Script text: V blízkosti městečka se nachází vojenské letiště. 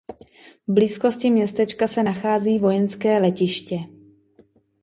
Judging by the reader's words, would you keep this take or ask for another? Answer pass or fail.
pass